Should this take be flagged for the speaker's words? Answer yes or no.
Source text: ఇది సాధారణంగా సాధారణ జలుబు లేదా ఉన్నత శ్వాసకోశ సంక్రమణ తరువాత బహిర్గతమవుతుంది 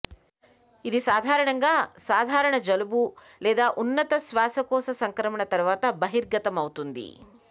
no